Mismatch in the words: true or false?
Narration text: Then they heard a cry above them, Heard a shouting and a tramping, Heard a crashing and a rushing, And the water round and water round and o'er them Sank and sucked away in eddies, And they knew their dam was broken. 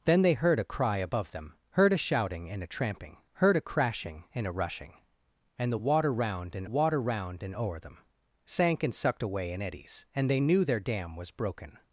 false